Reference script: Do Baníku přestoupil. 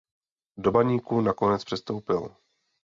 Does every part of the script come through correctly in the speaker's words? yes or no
no